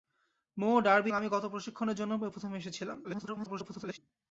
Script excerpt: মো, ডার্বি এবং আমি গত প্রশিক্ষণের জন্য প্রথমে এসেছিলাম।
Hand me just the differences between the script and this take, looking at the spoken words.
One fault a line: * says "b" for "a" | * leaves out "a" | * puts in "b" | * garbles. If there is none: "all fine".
* leaves out "এবং"
* garbles